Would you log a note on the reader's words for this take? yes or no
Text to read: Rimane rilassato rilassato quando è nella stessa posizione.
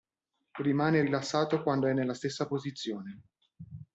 yes